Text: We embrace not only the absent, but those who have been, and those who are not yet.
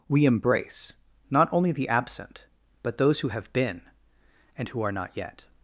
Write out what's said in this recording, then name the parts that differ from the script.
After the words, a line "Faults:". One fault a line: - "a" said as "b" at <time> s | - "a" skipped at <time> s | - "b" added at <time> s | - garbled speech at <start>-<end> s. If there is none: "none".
We embrace not only the absent, but those who have been, and who are not yet.
Faults:
- "those" skipped at 4.7 s